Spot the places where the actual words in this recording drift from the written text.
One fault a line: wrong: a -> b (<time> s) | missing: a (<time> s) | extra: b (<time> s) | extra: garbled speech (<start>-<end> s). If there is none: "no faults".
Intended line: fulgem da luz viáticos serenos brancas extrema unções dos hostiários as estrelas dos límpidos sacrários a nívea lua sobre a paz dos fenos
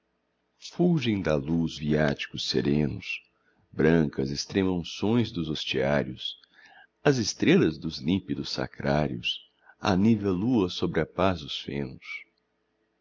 no faults